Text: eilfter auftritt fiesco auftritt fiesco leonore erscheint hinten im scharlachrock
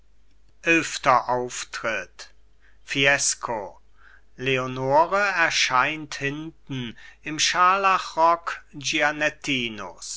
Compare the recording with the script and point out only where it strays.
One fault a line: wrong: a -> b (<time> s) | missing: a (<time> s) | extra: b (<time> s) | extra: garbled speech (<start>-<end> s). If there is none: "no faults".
missing: auftritt fiesco (3.8 s)